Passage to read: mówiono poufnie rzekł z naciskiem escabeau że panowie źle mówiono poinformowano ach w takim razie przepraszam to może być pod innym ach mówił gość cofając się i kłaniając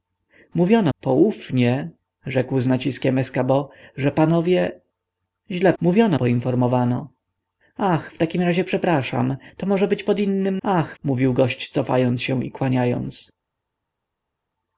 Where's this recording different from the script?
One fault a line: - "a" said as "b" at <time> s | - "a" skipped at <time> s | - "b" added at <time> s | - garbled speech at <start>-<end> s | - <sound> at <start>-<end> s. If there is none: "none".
none